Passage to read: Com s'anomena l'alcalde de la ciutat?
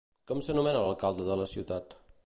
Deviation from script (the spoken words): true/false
false